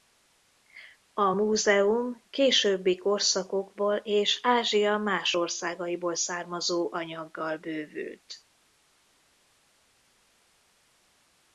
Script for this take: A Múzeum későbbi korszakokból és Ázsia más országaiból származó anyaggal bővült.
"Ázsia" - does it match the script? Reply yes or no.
yes